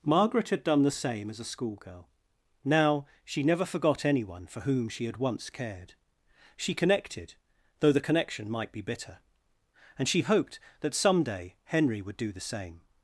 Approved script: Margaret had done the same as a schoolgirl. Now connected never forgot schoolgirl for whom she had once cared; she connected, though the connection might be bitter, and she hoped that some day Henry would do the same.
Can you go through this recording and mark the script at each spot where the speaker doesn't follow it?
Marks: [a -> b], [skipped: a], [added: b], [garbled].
Margaret had done the same as a schoolgirl. Now [connected -> she] never forgot [schoolgirl -> anyone] for whom she had once cared; she connected, though the connection might be bitter, and she hoped that some day Henry would do the same.